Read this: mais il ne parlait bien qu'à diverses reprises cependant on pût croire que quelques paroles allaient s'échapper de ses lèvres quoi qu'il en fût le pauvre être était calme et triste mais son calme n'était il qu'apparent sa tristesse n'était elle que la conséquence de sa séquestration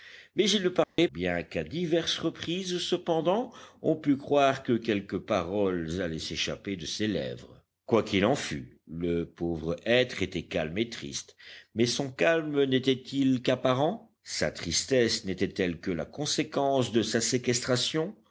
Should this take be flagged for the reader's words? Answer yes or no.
no